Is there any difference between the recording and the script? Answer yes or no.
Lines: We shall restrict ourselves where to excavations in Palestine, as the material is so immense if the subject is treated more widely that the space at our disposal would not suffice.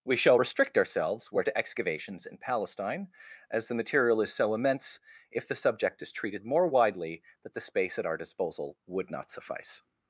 no